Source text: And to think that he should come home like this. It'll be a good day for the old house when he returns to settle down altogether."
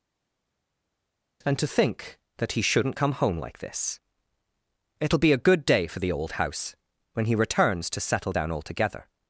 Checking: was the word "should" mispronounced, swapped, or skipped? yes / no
yes